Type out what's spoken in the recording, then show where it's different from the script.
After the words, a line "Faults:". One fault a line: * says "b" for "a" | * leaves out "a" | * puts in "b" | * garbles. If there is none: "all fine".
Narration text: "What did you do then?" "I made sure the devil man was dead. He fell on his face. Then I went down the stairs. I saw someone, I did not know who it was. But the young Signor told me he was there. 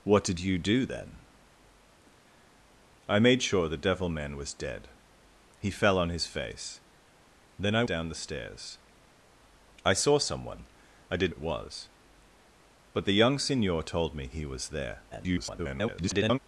"What did you do then?" "I made sure the devil man was dead. He fell on his face. Then I down the stairs. I saw someone, I did it was. But the young Signor told me he was there. [garbled]
Faults:
* leaves out "went"
* leaves out "not know who"
* garbles